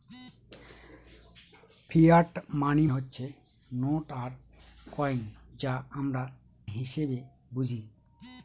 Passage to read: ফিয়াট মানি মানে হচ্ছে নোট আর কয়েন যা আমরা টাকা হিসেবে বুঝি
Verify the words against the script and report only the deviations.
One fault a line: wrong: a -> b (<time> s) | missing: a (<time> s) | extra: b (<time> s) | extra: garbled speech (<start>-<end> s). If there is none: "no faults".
missing: মানে (2.9 s)
missing: টাকা (6.2 s)